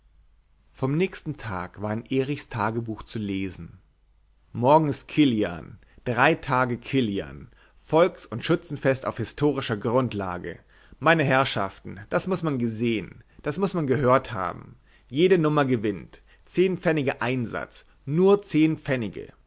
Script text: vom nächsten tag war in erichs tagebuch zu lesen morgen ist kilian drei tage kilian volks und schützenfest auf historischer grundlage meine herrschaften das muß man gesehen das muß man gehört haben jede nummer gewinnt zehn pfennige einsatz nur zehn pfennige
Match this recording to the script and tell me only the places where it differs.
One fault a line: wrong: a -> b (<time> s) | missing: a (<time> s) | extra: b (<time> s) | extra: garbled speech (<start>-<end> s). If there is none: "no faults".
no faults